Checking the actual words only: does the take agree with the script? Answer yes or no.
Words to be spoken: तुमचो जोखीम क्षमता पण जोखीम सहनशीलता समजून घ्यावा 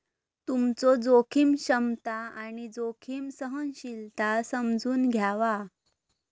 no